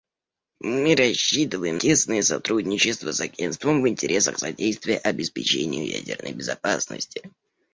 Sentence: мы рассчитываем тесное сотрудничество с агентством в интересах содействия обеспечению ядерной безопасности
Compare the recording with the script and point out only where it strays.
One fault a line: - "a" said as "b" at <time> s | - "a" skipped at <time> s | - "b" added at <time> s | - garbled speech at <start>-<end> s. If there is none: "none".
none